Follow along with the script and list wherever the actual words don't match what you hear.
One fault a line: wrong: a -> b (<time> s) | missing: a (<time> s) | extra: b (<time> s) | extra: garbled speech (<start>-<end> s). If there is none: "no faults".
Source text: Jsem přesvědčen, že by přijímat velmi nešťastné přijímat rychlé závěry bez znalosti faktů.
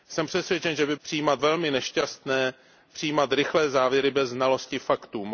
no faults